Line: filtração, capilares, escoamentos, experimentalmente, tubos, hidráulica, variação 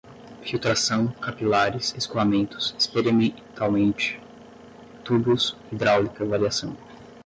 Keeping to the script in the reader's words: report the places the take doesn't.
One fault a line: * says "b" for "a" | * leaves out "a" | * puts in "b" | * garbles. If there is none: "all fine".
all fine